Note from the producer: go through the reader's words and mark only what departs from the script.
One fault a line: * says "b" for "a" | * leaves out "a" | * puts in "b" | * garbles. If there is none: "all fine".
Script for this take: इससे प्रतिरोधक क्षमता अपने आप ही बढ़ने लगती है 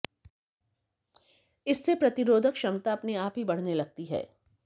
all fine